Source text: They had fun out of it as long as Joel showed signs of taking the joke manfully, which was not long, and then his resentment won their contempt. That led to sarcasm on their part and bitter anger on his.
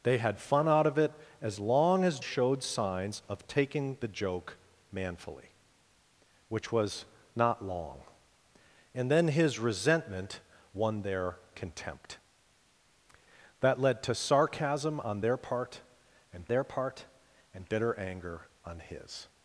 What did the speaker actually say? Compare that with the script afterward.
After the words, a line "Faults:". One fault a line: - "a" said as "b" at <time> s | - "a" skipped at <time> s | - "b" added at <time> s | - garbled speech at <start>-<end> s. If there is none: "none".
They had fun out of it as long as Showed signs of taking the joke manfully, which was not long, and then his resentment won their contempt. That led to sarcasm on their part and their part and bitter anger on his.
Faults:
- "Joel" skipped at 2.2 s
- "their part and" added at 16.5 s